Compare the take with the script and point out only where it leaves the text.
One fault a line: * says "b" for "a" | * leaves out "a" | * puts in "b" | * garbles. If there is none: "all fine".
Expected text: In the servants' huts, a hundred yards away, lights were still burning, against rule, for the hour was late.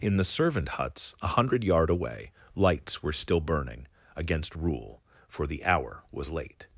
* says "servant" for "servants"
* says "yard" for "yards"